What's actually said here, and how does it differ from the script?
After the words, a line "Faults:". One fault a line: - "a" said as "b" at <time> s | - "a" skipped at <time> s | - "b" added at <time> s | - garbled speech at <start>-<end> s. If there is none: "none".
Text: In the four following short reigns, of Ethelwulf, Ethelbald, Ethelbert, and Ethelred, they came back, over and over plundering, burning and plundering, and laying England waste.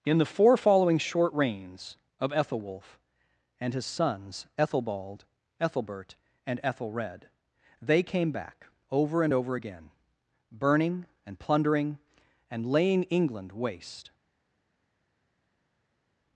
In the four following short reigns, of Ethelwulf, and his sons, Ethelbald, Ethelbert, and Ethelred, they came back, over and over again, burning and plundering, and laying England waste.
Faults:
- "and his sons" added at 3.6 s
- "plundering" said as "again" at 9.5 s